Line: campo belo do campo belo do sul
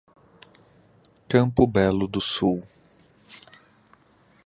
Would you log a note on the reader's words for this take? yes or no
yes